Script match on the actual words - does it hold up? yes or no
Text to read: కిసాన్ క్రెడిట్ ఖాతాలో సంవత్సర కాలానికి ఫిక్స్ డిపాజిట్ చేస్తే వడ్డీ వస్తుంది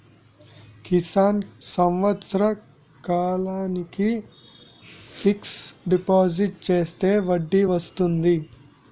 no